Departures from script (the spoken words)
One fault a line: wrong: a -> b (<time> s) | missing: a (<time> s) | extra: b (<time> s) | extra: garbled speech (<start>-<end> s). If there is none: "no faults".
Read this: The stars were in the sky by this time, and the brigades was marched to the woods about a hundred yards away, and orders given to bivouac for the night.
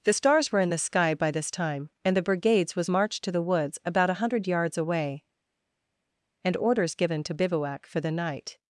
no faults